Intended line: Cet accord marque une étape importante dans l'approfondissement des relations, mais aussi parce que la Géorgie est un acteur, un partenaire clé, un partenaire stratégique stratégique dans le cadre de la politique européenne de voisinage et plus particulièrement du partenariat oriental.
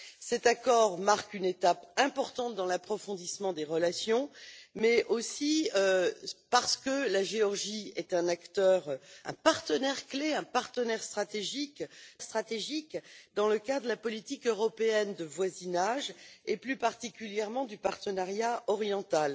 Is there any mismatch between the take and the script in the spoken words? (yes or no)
no